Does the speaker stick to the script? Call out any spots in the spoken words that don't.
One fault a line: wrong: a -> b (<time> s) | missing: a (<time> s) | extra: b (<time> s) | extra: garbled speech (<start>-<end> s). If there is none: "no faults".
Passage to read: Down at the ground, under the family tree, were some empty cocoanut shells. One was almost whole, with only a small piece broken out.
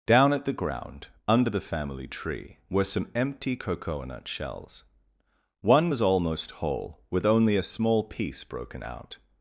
no faults